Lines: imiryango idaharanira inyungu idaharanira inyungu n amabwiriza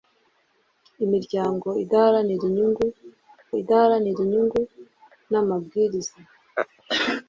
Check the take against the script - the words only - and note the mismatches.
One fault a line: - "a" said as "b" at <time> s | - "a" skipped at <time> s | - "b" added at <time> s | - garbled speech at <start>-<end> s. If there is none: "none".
none